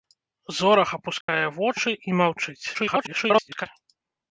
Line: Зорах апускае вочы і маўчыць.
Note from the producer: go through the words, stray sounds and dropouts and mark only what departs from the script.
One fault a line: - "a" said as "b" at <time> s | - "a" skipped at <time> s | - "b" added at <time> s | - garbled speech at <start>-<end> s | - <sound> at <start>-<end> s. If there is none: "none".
- dropout at 1.2-1.3 s
- garbled speech at 2.7-3.7 s